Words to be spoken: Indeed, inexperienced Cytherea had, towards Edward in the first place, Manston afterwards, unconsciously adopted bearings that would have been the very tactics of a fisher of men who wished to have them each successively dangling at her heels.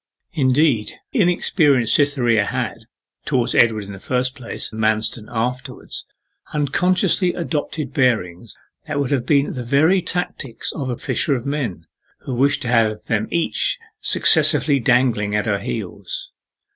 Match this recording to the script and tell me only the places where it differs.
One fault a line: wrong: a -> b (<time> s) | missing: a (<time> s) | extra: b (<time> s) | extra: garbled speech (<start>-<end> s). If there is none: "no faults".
no faults